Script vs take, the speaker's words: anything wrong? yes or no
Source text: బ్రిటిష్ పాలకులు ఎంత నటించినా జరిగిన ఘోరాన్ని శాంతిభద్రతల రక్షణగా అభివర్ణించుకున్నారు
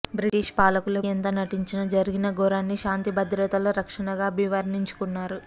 no